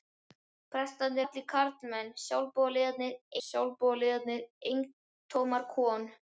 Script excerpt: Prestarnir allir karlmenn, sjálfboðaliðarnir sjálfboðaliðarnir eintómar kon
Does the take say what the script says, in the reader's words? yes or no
yes